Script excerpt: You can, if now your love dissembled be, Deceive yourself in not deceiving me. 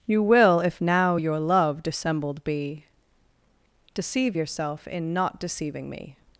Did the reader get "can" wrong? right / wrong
wrong